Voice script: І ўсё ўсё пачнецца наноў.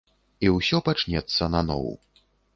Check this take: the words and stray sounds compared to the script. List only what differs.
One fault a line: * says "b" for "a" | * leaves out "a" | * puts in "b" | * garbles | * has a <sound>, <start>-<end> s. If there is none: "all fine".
* leaves out "ўсё"